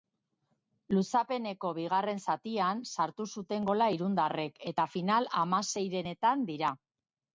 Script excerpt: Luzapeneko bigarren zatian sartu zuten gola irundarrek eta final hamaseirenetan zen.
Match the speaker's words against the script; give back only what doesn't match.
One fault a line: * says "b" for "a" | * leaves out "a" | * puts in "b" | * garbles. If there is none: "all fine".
* says "dira" for "zen"